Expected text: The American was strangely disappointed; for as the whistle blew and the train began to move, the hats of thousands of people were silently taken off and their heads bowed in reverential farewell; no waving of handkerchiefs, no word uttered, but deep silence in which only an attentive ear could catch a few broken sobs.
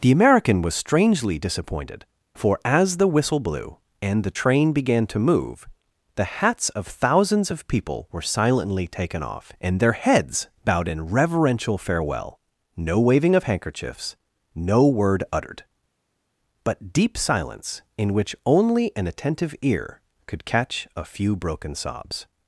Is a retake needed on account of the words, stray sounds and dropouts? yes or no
no